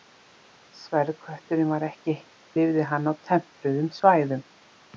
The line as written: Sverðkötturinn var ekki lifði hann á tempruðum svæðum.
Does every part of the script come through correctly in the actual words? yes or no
yes